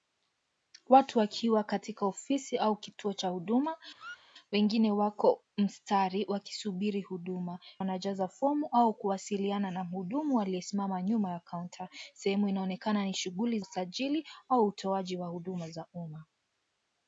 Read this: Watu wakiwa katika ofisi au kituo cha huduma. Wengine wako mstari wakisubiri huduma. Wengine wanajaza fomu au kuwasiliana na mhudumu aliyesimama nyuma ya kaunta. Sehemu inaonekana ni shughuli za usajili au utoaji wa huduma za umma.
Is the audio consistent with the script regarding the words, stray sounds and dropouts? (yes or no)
no